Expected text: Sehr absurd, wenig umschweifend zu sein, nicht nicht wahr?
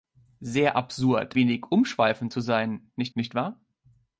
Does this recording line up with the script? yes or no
yes